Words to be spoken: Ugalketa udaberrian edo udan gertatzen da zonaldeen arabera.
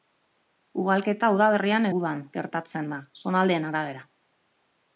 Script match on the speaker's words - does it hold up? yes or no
no